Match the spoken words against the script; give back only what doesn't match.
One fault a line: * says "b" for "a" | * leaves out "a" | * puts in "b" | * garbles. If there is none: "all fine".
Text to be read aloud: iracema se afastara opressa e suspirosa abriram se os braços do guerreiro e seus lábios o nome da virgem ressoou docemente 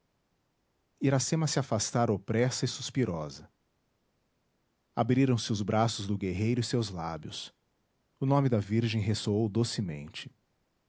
all fine